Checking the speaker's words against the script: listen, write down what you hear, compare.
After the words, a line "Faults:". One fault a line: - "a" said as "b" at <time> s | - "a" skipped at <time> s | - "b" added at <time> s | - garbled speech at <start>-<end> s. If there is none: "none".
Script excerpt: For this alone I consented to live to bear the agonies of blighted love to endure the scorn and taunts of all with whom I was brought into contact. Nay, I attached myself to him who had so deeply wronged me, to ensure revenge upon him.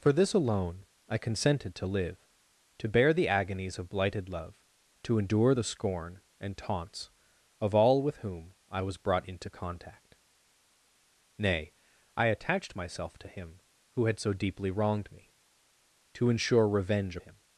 For this alone I consented to live to bear the agonies of blighted love to endure the scorn and taunts of all with whom I was brought into contact. Nay, I attached myself to him who had so deeply wronged me, to ensure revenge him.
Faults:
- "upon" skipped at 17.2 s